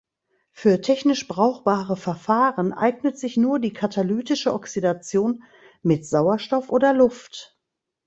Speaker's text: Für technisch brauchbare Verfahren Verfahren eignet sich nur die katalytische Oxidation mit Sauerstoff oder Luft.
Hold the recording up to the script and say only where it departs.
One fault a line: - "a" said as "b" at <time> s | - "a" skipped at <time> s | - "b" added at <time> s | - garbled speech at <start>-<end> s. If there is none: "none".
- "Verfahren" skipped at 2.7 s